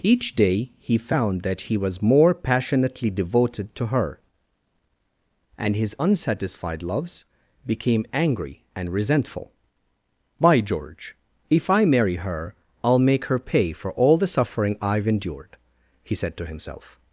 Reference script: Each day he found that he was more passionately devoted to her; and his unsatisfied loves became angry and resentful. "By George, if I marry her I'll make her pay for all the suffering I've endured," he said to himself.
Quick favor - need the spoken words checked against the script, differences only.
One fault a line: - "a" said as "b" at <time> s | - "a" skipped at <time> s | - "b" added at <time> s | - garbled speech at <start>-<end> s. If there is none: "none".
none